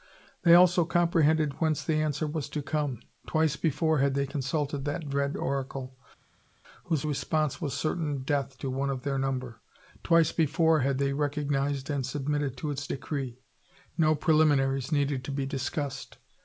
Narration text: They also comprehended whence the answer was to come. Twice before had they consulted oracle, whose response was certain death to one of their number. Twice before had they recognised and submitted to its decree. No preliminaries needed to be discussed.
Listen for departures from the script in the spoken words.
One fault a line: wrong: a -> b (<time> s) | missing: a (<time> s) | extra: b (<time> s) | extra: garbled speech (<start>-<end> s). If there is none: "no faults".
extra: that dread (4.8 s)